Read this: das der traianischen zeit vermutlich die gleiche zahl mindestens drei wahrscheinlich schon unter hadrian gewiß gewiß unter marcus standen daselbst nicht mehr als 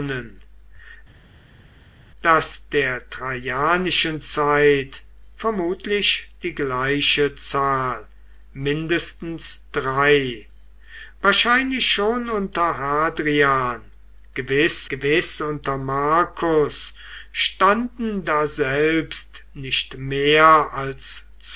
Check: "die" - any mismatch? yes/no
no